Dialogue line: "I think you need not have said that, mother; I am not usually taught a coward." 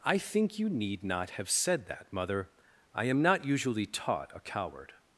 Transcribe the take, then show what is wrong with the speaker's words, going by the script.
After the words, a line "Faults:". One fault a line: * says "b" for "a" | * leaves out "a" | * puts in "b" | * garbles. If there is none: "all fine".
"I think you need not have said that, mother; I am not usually taught a coward."
Faults:
all fine